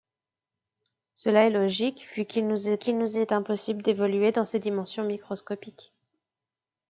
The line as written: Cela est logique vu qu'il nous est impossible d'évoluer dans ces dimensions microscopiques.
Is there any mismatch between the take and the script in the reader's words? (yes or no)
yes